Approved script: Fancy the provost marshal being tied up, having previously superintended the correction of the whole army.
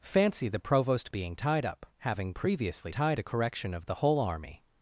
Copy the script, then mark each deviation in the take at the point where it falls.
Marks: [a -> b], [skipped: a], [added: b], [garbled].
Fancy the provost [skipped: marshal] being tied up, having previously [superintended -> tied] the correction of the whole army.